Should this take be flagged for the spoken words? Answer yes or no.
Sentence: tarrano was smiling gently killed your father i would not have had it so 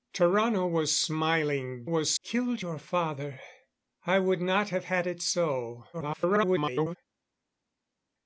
yes